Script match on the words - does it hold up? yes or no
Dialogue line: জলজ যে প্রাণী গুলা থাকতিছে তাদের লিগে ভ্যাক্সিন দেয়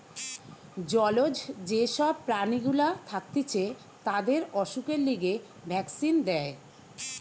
no